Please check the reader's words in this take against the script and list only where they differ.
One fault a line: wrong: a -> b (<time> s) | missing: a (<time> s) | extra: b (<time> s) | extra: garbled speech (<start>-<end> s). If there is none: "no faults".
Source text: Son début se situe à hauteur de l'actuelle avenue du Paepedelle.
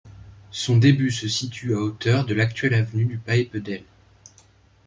no faults